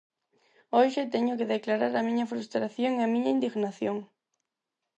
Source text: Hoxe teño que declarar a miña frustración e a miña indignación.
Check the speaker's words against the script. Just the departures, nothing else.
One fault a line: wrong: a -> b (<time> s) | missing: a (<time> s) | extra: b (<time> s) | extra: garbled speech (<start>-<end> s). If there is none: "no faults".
no faults